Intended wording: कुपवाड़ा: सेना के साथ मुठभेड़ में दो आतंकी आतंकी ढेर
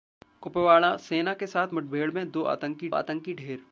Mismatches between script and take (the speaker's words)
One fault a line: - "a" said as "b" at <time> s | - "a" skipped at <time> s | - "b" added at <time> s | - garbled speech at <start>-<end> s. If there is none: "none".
none